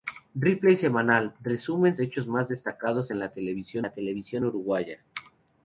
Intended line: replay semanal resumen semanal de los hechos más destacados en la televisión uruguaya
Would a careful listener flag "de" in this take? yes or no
yes